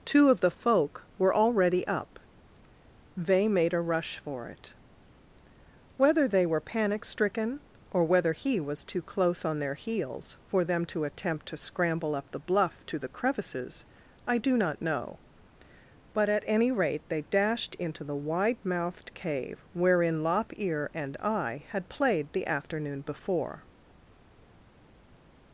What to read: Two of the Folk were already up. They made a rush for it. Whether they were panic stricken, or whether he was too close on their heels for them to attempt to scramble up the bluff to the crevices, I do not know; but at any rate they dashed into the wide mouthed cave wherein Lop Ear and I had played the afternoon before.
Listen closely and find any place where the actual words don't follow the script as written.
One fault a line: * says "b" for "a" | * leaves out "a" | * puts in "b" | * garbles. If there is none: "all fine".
all fine